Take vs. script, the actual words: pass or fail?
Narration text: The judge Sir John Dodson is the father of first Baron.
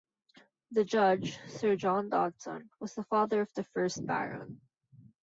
fail